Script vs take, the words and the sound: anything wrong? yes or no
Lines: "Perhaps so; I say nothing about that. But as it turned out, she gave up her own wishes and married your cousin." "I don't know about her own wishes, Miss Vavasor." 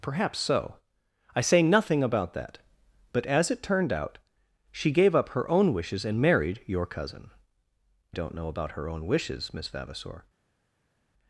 yes